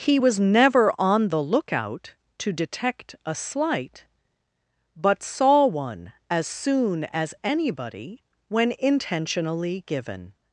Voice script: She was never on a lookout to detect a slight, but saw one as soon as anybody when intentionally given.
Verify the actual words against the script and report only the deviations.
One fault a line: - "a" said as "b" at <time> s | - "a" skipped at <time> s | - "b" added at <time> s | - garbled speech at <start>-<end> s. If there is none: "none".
- "She" said as "He" at 0.0 s
- "a" said as "the" at 1.3 s